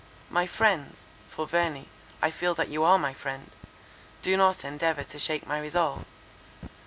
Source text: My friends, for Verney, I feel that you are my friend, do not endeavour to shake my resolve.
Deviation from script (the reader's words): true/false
false